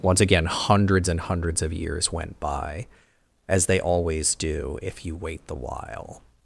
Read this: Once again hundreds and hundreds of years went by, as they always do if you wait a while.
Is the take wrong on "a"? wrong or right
wrong